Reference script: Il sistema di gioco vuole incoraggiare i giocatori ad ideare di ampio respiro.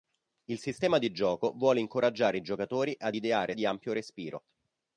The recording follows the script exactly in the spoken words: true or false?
true